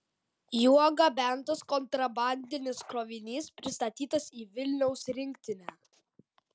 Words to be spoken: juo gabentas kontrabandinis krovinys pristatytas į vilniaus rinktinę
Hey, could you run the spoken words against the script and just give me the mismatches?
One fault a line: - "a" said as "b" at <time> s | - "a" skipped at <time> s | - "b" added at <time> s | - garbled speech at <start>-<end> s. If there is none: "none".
none